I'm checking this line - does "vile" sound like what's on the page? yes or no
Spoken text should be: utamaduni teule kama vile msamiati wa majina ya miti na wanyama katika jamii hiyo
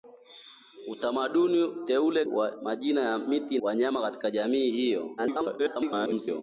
no